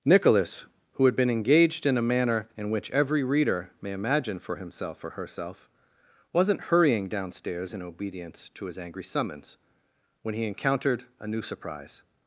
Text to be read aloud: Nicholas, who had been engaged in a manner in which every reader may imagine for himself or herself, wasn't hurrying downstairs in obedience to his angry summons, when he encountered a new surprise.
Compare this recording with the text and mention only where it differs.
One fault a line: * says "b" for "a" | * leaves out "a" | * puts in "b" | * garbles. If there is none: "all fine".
all fine